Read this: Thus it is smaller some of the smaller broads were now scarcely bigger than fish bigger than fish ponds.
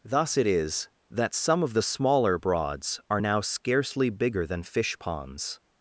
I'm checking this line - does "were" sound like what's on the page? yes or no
no